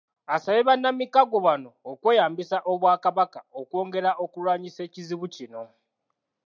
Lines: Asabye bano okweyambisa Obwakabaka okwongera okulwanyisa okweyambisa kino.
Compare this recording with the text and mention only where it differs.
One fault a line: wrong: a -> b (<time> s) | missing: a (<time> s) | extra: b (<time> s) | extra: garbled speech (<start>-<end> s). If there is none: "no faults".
extra: bannamikago (0.7 s)
wrong: okweyambisa -> ekizibu (4.9 s)